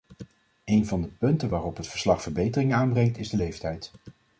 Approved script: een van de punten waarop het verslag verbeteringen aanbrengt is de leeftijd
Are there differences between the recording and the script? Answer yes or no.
no